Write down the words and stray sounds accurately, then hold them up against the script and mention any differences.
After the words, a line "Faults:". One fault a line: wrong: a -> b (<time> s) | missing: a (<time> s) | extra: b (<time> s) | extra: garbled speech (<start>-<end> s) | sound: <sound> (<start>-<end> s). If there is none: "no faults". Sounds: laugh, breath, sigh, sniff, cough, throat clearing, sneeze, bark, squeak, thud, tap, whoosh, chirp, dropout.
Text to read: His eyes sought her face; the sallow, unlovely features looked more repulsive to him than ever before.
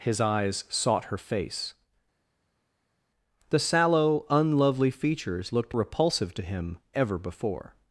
His eyes sought her face; the sallow, unlovely features looked repulsive to him ever before.
Faults:
missing: more (5.7 s)
missing: than (6.8 s)